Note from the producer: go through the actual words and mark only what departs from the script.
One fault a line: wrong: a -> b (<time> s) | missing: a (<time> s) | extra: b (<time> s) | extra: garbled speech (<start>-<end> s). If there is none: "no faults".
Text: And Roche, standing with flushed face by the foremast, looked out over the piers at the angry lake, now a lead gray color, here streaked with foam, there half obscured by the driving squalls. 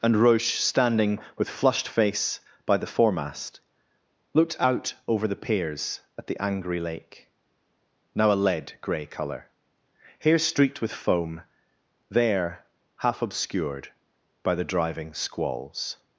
no faults